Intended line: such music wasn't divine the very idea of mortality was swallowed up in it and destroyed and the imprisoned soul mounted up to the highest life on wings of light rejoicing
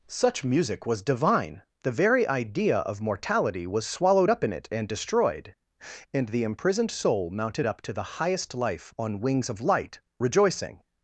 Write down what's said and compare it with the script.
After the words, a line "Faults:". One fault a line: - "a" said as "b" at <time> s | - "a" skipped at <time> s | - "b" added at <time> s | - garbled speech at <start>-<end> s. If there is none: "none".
such music was divine the very idea of mortality was swallowed up in it and destroyed and the imprisoned soul mounted up to the highest life on wings of light rejoicing
Faults:
- "wasn't" said as "was" at 0.9 s